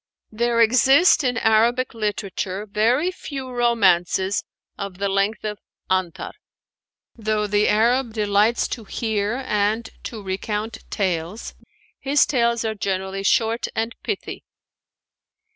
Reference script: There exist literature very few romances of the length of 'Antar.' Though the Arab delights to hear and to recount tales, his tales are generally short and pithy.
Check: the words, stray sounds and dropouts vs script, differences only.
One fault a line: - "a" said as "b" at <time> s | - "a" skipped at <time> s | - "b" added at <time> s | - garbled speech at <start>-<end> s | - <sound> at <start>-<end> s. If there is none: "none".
- "in Arabic" added at 1.2 s